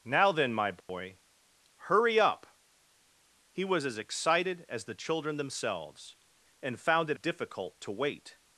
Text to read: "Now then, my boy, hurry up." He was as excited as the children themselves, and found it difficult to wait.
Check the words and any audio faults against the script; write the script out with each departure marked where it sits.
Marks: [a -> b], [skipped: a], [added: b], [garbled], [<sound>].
"Now then, my boy, [dropout] hurry up." He was as excited as the children themselves, and found it difficult to wait.